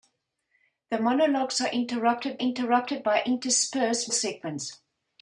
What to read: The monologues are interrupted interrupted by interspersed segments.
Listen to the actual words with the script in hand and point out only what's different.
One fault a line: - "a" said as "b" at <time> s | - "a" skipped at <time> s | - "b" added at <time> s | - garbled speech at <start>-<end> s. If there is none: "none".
none